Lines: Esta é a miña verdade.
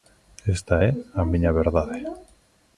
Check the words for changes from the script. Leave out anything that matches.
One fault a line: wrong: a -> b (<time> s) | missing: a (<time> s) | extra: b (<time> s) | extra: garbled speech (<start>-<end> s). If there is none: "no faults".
no faults